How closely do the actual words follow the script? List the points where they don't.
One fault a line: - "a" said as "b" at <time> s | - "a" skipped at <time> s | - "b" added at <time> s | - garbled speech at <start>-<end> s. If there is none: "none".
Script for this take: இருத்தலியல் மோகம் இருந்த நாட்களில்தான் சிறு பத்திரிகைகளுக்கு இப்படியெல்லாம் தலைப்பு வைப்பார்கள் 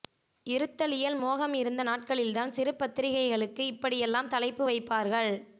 none